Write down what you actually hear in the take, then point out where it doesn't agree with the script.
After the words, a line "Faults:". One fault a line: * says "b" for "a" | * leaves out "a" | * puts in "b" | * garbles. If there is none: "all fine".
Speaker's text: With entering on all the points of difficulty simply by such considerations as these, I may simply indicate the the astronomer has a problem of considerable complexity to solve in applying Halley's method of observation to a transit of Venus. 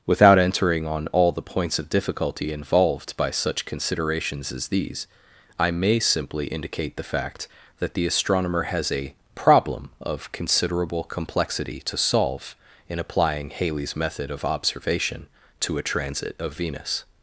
Without entering on all the points of difficulty involved by such considerations as these, I may simply indicate the fact that the astronomer has a problem of considerable complexity to solve in applying Halley's method of observation to a transit of Venus.
Faults:
* says "Without" for "With"
* says "involved" for "simply"
* puts in "fact that"